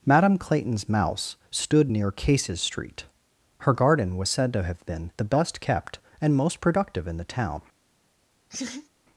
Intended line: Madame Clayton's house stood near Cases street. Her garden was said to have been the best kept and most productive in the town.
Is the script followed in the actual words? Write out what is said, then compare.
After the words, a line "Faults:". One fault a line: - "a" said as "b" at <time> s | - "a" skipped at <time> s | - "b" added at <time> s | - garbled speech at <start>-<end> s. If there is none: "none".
Madame Clayton's mouse stood near Cases street. Her garden was said to have been the best kept and most productive in the town.
Faults:
- "house" said as "mouse" at 0.9 s